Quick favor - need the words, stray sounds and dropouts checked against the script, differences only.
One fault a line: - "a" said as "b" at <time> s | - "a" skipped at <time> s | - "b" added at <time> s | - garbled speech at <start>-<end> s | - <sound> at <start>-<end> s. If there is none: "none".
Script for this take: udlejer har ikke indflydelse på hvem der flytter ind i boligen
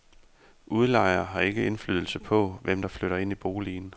none